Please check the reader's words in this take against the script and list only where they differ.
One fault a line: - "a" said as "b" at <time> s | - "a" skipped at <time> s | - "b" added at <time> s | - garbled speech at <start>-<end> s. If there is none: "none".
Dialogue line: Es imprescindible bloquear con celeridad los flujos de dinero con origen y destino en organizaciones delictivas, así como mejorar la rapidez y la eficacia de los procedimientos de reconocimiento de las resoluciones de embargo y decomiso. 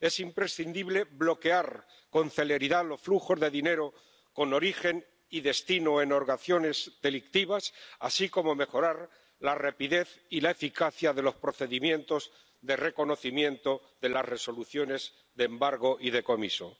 none